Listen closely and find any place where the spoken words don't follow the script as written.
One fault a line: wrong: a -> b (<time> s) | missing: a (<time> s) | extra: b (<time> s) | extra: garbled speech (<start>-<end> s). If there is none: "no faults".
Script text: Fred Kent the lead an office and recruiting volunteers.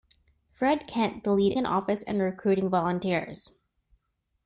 no faults